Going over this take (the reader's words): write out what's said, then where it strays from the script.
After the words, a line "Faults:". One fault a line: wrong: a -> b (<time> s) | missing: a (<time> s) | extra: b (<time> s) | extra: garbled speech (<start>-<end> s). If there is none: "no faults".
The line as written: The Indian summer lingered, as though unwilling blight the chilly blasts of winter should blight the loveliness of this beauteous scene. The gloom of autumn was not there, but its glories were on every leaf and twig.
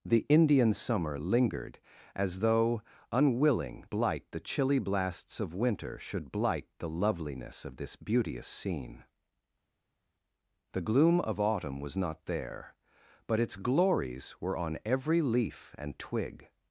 The Indian summer lingered, as though unwilling blight the chilly blasts of winter should blight the loveliness of this beauteous scene. The gloom of autumn was not there, but its glories were on every leaf and twig.
Faults:
no faults